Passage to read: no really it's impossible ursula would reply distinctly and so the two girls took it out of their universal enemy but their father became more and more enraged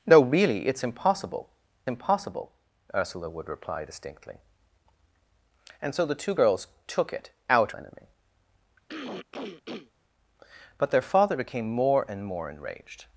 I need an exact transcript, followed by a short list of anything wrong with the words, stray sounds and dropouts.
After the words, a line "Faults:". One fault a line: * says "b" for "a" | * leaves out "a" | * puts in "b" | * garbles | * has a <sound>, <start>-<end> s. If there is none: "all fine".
no really it's impossible impossible ursula would reply distinctly and so the two girls took it out enemy but their father became more and more enraged
Faults:
* puts in "impossible"
* leaves out "of their universal"
* has a throat clearing, 8.9-9.9 s